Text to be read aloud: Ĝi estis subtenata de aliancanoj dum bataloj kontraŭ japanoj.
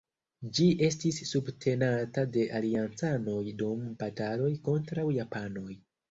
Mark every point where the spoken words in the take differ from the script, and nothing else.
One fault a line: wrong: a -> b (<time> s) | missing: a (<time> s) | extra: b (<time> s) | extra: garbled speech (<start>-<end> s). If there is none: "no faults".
no faults